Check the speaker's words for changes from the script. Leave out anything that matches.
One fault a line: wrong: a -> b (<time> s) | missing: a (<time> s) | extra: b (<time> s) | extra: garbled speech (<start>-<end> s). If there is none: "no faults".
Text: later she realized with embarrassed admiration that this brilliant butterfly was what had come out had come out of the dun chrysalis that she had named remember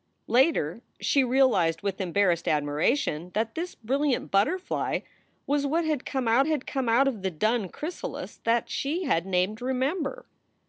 no faults